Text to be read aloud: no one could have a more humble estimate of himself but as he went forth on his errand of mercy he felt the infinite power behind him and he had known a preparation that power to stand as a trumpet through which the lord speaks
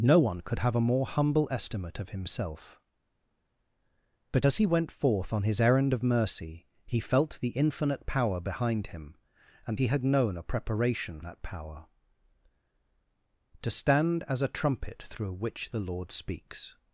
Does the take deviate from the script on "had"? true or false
false